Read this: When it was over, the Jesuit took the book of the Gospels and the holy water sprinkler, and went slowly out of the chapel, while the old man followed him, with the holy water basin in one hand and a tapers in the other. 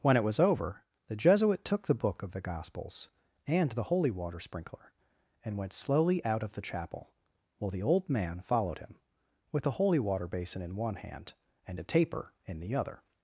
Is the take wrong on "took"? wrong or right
right